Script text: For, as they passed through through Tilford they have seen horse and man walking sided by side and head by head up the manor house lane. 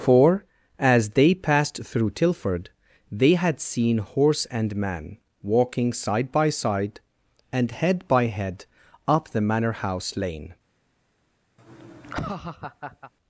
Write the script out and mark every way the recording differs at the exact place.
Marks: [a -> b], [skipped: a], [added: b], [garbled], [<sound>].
For, as they passed through [skipped: through] Tilford they [have -> had] seen horse and man walking [sided -> side] by side and head by head up the manor house lane. [laugh]